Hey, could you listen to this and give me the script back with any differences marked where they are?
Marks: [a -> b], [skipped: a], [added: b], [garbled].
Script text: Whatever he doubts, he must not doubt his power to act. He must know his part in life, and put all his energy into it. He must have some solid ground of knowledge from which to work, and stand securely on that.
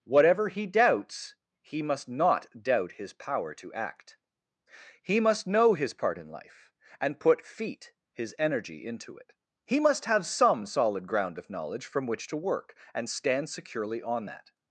Whatever he doubts, he must not doubt his power to act. He must know his part in life, and put [all -> feet] his energy into it. He must have some solid ground of knowledge from which to work, and stand securely on that.